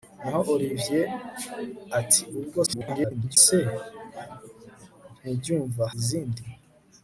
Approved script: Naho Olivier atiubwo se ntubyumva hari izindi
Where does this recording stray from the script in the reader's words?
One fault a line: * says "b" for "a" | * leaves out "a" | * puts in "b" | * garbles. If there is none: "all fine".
* garbles
* leaves out "hari"